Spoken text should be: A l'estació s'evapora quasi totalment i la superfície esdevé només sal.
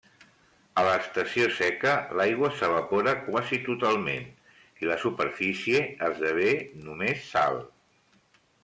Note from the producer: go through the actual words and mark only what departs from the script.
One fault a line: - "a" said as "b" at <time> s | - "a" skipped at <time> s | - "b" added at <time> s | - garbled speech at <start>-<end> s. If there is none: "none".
- "seca l'aigua" added at 1.6 s